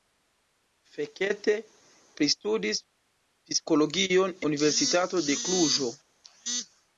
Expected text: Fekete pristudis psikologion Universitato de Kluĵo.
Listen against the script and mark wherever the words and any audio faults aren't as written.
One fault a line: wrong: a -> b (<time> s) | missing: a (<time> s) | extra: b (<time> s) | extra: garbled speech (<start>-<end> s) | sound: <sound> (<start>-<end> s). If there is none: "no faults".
no faults